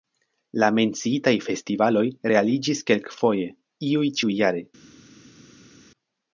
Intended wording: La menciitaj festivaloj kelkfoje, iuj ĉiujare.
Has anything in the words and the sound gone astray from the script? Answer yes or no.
yes